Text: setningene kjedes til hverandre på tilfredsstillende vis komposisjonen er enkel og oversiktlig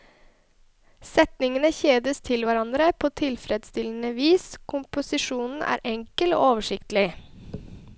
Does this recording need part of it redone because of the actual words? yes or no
no